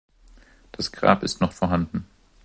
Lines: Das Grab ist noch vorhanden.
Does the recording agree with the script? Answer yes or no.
yes